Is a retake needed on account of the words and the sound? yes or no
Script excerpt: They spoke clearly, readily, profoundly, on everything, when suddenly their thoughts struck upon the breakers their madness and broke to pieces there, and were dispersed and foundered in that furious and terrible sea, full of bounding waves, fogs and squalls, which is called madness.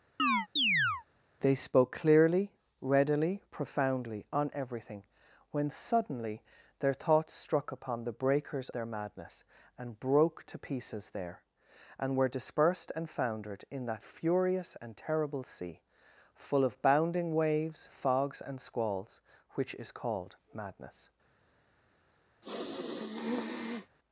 yes